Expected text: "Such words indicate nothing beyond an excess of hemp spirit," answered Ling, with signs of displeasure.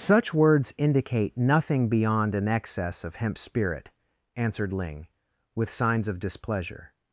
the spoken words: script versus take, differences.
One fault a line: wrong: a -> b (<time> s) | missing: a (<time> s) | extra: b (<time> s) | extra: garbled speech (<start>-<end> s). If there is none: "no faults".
no faults